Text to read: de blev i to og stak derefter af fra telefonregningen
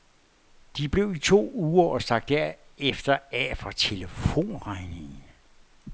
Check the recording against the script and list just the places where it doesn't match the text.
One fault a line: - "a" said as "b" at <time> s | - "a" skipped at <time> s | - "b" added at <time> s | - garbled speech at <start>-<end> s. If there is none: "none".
- "uger" added at 1.5 s